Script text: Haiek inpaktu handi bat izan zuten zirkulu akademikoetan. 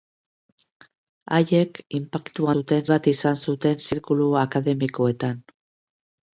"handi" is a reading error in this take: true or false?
true